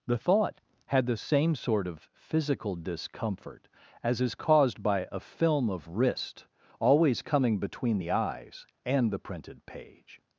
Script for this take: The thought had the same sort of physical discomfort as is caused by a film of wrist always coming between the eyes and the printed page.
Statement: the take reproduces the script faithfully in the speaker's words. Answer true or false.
true